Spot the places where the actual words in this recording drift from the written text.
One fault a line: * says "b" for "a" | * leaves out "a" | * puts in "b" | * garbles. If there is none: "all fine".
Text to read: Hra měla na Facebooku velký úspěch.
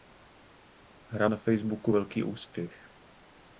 * leaves out "měla"